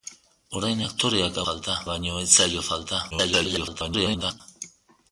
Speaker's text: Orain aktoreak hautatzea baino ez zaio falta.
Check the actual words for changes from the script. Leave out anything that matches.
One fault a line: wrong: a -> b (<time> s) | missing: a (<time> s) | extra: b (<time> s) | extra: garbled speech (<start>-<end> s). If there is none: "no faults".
wrong: hautatzea -> falta (1.4 s)
extra: garbled speech (3.1-4.4 s)